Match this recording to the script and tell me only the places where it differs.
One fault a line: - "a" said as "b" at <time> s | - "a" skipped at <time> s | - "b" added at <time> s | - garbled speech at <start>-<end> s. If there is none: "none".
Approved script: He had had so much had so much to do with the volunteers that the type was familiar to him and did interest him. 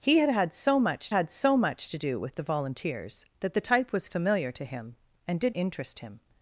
none